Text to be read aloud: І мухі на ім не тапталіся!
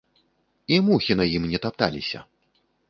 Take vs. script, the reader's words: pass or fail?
pass